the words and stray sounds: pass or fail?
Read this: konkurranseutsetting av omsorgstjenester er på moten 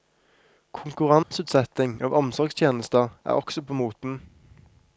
fail